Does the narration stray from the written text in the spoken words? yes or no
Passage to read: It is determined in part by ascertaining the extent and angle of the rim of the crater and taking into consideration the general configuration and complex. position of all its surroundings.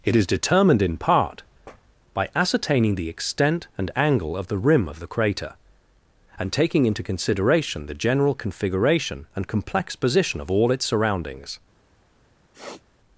no